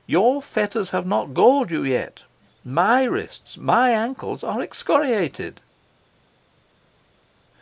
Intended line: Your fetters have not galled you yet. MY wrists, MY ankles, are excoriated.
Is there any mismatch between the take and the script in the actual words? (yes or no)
no